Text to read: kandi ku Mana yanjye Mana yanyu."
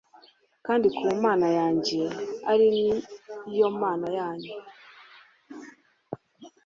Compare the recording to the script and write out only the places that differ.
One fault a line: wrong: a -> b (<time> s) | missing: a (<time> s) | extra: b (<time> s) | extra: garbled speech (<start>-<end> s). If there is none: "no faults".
extra: ari yo (2.5 s)